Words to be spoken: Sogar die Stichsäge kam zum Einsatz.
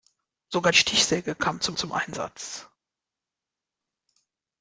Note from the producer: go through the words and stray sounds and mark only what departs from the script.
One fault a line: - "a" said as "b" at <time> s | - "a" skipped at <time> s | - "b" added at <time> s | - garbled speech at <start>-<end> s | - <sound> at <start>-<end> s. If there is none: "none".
- "die" skipped at 0.7 s
- "zum" added at 1.7 s